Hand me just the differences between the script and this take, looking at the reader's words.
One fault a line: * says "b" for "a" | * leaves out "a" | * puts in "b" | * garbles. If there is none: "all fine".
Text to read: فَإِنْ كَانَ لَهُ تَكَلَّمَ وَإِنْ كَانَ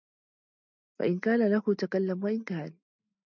all fine